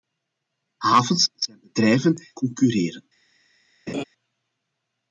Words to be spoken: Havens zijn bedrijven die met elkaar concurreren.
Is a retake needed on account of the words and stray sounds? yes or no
yes